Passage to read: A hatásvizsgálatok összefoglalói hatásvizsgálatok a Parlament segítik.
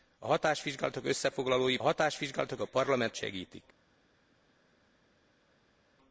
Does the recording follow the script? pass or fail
pass